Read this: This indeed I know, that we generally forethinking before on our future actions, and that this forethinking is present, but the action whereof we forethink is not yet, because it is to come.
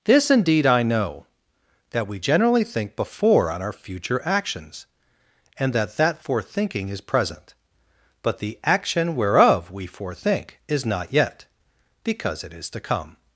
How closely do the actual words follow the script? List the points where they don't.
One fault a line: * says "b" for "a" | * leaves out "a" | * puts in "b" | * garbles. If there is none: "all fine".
* says "think" for "forethinking"
* says "that" for "this"